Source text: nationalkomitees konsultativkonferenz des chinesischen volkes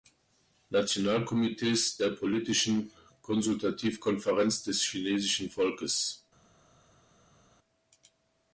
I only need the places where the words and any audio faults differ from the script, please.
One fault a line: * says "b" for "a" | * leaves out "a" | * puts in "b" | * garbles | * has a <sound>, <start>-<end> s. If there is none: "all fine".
* puts in "der politischen"